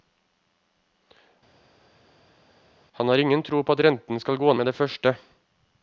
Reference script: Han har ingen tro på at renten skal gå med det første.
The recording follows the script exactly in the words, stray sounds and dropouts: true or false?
true